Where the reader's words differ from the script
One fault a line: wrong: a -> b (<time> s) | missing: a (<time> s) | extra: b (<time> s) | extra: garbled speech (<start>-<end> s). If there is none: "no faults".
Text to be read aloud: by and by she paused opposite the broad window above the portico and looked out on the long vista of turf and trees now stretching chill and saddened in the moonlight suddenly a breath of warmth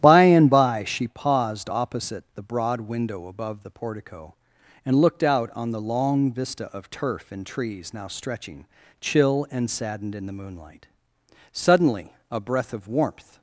no faults